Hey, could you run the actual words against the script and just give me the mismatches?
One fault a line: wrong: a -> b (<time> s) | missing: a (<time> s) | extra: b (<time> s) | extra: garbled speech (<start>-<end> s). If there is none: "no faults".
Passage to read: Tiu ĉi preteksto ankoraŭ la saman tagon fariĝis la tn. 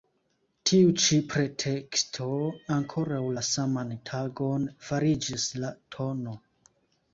no faults